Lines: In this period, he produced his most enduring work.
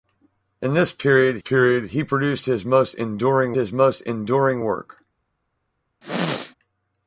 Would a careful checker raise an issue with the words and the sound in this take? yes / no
yes